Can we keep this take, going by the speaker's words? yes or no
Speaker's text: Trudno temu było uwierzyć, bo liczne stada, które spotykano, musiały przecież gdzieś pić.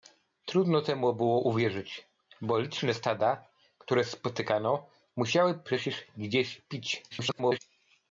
no